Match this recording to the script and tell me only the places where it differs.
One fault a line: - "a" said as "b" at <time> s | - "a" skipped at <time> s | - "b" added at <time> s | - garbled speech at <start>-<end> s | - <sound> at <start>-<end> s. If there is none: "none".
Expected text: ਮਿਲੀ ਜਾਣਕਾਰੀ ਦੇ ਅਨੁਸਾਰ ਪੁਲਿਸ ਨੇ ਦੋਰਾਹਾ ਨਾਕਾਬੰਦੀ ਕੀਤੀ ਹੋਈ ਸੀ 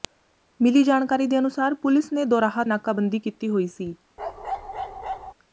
- bark at 4.2-5.3 s